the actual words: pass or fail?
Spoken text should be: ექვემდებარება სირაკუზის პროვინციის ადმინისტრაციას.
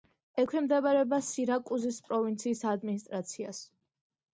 pass